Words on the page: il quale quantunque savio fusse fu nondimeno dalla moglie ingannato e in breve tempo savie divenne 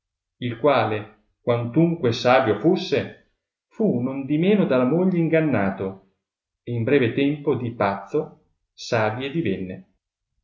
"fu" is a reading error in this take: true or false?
false